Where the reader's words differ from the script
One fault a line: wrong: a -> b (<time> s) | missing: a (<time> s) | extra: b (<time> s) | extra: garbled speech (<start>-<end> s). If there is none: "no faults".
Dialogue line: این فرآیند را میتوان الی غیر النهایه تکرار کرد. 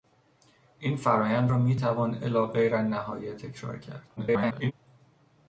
extra: garbled speech (4.2-4.7 s)